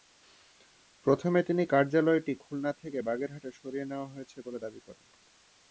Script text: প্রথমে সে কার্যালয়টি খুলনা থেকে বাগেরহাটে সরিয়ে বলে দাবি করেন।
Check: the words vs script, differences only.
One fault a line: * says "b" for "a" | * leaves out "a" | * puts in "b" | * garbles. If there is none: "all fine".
* says "তিনি" for "সে"
* puts in "নেওয়া হয়েছে"